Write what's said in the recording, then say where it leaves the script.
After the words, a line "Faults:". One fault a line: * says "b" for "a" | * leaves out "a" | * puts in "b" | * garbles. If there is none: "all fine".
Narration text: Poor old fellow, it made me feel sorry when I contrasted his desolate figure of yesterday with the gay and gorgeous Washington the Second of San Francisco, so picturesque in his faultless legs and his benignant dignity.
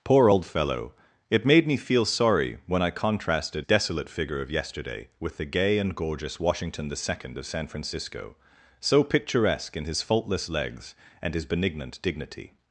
Poor old fellow, it made me feel sorry when I contrasted desolate figure of yesterday with the gay and gorgeous Washington the Second of San Francisco, so picturesque in his faultless legs and his benignant dignity.
Faults:
* leaves out "his"